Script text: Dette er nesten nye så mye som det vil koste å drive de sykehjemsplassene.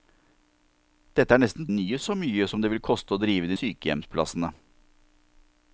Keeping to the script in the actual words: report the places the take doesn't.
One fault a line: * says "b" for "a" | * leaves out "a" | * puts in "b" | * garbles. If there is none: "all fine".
all fine